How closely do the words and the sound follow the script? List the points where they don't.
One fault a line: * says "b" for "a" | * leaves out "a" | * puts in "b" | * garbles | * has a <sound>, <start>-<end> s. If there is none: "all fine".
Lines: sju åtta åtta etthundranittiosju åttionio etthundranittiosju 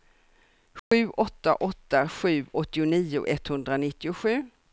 * has a dropout, 0.8-0.9 s
* says "sju" for "etthundranittiosju"